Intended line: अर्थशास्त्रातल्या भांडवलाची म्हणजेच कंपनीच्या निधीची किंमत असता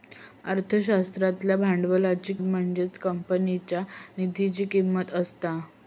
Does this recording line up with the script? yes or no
yes